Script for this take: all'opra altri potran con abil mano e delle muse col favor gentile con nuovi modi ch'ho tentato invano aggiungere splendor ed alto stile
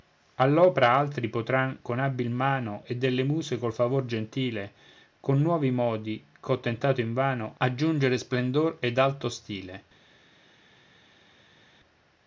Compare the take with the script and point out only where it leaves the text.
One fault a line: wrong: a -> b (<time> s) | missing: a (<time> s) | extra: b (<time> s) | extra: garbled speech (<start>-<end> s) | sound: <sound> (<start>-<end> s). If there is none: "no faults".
no faults